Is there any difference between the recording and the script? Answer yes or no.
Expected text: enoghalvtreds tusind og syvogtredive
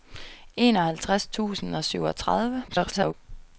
yes